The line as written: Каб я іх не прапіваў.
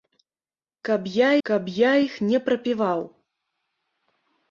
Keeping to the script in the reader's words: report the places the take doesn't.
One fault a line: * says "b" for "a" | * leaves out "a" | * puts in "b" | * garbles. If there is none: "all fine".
* puts in "каб я"